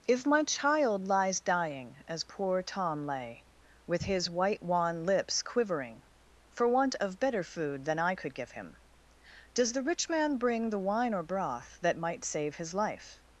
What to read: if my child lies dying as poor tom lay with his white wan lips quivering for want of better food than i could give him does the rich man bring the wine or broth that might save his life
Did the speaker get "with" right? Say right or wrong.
right